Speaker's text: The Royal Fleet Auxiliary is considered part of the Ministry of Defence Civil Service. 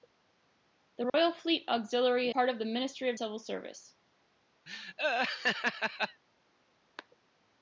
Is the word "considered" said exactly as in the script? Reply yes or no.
no